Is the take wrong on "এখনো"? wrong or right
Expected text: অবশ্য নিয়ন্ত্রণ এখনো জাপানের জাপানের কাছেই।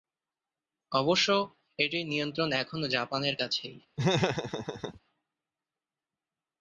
right